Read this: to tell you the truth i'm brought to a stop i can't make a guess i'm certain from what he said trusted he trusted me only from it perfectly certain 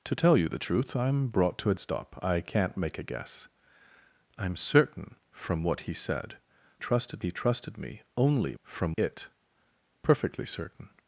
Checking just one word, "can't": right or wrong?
right